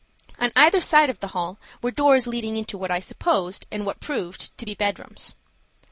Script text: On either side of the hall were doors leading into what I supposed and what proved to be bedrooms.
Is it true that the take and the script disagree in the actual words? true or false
false